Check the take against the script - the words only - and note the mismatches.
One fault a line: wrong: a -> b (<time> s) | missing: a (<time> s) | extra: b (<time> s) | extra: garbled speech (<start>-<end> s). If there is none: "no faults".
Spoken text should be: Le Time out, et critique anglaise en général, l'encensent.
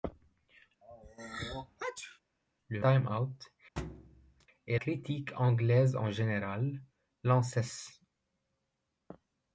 no faults